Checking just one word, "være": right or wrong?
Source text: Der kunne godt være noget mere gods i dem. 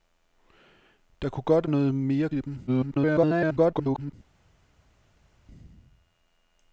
wrong